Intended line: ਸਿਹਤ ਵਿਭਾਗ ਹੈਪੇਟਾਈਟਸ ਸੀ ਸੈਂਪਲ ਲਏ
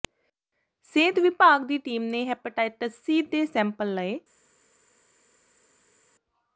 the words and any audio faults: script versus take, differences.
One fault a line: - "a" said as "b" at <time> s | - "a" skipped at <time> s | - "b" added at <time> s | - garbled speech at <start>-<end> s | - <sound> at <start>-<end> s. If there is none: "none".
- "ਦੀ ਟੀਮ ਨੇ" added at 1.6 s
- "ਦੇ" added at 3.2 s